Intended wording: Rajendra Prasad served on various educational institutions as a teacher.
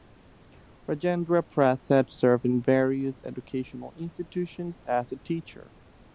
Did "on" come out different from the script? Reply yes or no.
yes